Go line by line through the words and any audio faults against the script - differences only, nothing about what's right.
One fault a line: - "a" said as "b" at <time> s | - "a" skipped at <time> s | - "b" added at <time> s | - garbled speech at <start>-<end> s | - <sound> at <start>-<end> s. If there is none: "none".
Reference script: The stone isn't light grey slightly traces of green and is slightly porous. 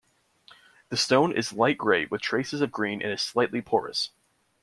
- "isn't" said as "is" at 1.3 s
- "slightly" said as "with" at 2.0 s